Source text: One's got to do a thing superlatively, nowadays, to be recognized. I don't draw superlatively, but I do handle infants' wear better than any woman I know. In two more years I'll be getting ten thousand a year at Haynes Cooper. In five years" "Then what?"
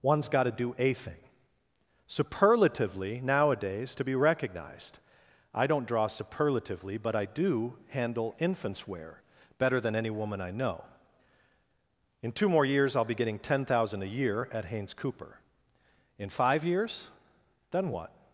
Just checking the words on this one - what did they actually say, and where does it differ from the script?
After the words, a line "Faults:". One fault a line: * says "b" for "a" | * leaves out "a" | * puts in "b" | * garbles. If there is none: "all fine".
One's got to do a thing superlatively, nowadays, to be recognized. I don't draw superlatively, but I do handle infants' wear better than any woman I know. In two more years I'll be getting ten thousand a year at Haynes Cooper. In five years" "Then what?"
Faults:
all fine